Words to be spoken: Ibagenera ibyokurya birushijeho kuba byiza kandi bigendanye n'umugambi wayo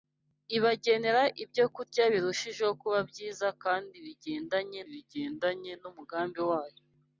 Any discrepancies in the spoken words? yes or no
yes